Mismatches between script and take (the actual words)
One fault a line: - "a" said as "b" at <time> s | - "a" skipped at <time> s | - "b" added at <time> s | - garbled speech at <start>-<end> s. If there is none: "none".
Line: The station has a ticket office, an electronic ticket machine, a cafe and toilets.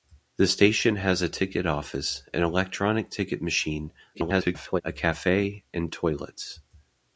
- garbled speech at 4.1-4.8 s